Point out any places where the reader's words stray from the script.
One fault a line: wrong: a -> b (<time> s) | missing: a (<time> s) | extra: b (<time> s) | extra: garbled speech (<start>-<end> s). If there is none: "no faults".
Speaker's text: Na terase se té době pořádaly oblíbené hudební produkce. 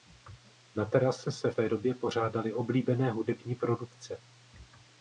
no faults